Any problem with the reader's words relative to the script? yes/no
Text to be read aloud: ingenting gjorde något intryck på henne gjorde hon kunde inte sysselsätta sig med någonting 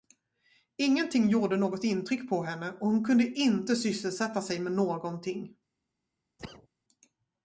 yes